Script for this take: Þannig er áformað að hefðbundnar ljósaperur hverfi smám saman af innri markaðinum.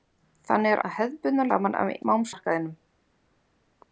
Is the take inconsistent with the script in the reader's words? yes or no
yes